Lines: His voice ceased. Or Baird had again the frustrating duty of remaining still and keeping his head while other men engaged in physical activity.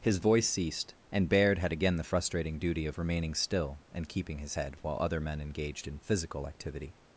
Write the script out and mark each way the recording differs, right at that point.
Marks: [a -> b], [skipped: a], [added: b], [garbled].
His voice ceased. [Or -> And] Baird had again the frustrating duty of remaining still and keeping his head while other men engaged in physical activity.